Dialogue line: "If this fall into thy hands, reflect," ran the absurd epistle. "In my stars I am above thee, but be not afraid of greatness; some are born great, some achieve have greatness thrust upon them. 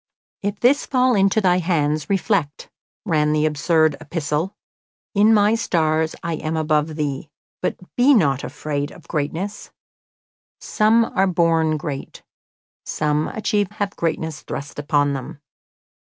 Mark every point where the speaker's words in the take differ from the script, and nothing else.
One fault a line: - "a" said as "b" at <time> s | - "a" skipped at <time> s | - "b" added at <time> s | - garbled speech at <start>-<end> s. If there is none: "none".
none